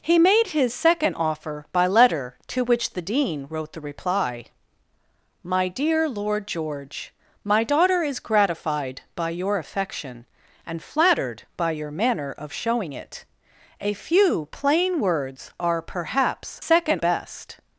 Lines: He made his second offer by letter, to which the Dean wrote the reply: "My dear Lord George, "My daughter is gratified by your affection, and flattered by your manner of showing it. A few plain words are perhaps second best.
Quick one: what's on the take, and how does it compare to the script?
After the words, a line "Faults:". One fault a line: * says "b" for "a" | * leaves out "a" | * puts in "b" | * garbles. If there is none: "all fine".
He made his second offer by letter, to which the Dean wrote the reply: "My dear Lord George, "My daughter is gratified by your affection, and flattered by your manner of showing it. A few plain words are perhaps second best.
Faults:
all fine